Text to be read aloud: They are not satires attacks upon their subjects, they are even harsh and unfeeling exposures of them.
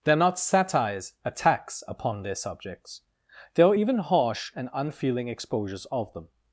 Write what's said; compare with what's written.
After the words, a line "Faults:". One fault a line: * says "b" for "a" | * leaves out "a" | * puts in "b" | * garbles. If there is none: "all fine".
They are not satires attacks upon their subjects, they are even harsh and unfeeling exposures of them.
Faults:
all fine